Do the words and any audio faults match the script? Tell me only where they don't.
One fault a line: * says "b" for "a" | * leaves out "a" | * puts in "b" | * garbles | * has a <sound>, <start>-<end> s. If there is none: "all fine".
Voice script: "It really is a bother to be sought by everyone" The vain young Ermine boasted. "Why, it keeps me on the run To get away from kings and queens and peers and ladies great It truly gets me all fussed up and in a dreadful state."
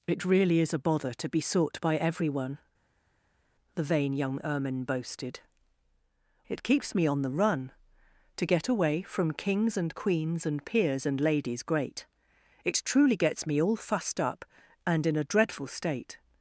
* leaves out "Why"